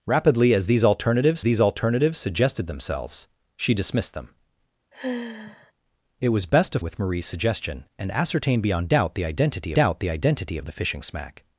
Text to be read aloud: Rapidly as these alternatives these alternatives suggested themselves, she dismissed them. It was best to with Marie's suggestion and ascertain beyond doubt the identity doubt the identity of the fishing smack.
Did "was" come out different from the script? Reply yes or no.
no